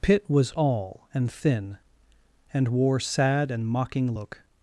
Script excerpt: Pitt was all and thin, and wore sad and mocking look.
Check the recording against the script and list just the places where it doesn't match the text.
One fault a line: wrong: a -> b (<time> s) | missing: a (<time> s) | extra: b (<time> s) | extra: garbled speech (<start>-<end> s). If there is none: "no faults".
no faults